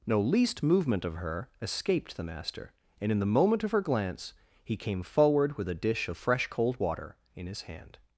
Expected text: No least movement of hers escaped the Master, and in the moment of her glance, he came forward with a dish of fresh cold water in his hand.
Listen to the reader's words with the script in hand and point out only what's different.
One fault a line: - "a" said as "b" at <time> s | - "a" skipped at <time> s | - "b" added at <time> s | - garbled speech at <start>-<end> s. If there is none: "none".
- "hers" said as "her" at 1.1 s